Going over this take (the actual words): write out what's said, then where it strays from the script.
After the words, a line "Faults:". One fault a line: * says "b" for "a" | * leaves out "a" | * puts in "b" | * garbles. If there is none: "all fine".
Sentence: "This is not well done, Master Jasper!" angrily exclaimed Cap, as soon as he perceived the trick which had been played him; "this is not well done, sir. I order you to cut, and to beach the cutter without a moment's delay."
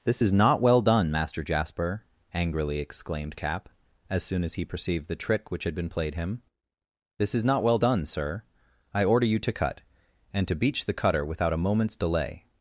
"This is not well done, Master Jasper!" angrily exclaimed Cap, as soon as he perceived the trick which had been played him; "this is not well done, sir. I order you to cut, and to beach the cutter without a moment's delay."
Faults:
all fine